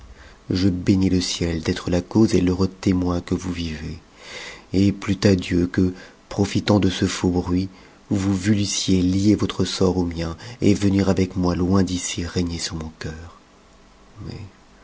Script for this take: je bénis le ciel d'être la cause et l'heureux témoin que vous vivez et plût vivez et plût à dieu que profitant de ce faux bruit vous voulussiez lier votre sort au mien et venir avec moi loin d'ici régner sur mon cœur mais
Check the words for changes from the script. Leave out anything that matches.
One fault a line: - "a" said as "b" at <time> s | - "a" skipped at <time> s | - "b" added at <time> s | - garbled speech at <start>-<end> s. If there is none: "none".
- "vivez et plût" skipped at 5.2 s